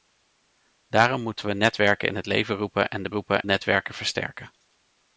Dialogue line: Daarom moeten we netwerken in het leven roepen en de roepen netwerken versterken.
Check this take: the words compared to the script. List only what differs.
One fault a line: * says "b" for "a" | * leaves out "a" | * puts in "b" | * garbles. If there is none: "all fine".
all fine